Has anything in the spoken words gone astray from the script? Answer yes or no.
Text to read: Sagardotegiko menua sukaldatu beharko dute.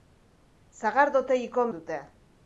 yes